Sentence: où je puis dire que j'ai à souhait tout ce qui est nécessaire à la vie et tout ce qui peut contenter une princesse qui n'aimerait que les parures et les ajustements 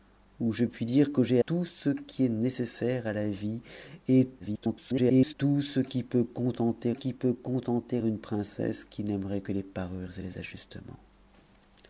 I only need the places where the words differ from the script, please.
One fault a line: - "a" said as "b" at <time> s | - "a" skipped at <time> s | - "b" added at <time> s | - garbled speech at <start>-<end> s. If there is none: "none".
- "à souhait" skipped at 1.4 s
- garbled speech at 4.4-5.3 s
- "qui peut contenter" added at 6.9 s